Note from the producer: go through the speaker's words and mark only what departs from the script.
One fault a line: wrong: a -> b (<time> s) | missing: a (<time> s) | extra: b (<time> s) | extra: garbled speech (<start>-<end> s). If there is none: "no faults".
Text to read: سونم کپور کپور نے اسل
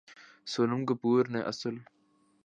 missing: کپور (1.2 s)